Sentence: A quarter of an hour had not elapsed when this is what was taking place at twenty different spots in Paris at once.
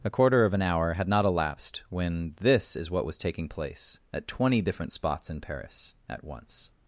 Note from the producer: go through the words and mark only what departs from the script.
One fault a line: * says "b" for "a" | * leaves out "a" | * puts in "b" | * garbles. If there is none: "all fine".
all fine